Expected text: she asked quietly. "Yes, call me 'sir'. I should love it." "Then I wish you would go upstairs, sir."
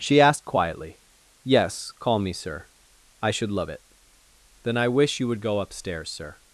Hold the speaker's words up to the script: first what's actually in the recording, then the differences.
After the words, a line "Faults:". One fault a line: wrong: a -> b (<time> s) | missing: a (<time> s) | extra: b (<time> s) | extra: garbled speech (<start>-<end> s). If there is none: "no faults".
she asked quietly. "Yes, call me 'sir'. I should love it." "Then I wish you would go upstairs, sir."
Faults:
no faults